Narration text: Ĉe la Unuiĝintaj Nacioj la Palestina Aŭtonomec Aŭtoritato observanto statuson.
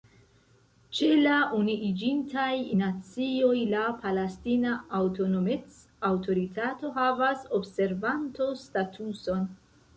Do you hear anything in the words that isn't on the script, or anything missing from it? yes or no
yes